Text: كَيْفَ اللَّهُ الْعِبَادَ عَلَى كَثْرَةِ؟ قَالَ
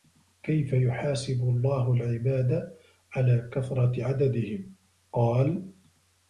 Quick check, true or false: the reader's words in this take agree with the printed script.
false